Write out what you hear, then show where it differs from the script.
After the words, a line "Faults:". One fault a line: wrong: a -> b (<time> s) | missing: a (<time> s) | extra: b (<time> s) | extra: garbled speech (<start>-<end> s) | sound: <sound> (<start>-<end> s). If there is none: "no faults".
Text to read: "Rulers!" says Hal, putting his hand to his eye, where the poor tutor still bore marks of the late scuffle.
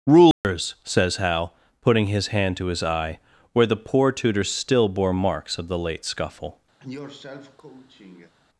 "Rulers!" says Hal, putting his hand to his eye, where the poor tutor still bore marks of the late scuffle.
Faults:
sound: dropout (0.3-0.4 s)
sound: cough (6.8-8.3 s)